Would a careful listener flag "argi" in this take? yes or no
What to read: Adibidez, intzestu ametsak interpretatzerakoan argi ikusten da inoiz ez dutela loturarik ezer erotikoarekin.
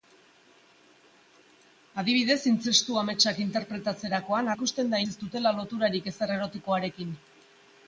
yes